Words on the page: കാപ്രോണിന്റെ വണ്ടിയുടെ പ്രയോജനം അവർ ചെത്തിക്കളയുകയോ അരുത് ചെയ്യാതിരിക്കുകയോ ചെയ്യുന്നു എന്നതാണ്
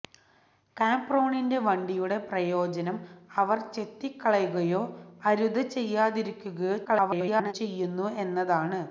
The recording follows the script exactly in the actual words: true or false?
false